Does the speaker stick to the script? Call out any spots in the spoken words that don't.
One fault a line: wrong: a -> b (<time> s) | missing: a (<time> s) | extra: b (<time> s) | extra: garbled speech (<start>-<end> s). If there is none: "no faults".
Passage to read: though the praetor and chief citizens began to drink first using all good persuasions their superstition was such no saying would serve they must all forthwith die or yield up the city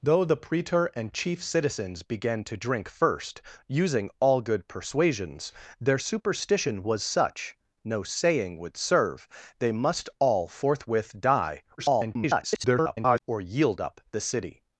extra: garbled speech (11.8-13.2 s)